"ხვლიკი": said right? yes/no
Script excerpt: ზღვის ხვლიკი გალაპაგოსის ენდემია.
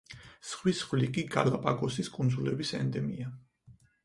yes